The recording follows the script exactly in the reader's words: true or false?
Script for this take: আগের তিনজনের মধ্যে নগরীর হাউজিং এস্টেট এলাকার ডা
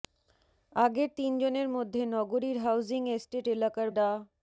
true